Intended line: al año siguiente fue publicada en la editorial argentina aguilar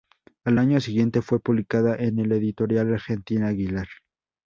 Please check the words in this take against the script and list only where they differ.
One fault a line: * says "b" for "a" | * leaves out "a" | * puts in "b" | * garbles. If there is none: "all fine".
all fine